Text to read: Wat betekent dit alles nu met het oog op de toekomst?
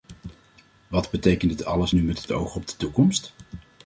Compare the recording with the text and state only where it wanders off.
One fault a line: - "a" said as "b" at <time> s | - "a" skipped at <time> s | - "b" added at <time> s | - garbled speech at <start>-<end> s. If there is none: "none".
none